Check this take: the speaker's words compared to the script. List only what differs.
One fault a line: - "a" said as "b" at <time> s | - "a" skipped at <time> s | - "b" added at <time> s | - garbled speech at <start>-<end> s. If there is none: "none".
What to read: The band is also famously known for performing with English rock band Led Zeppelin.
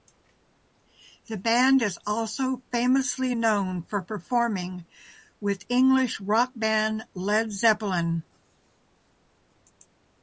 none